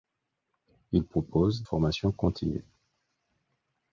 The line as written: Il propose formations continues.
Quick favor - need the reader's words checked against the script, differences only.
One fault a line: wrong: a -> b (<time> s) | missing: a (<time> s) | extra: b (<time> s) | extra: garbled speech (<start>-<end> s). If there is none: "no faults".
no faults